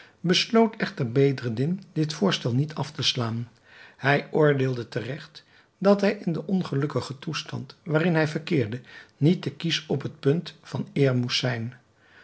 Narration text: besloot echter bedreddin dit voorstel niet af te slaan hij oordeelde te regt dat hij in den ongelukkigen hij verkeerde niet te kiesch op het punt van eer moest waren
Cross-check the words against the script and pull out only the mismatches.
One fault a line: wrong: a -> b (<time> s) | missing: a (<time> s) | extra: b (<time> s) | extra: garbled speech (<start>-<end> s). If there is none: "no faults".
extra: toestand waarin (7.2 s)
wrong: waren -> zijn (11.4 s)